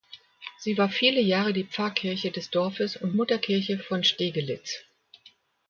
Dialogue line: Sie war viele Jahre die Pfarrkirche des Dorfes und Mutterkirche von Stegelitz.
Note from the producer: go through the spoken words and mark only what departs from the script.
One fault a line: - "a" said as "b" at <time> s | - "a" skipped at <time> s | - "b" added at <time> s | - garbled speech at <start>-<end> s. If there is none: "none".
none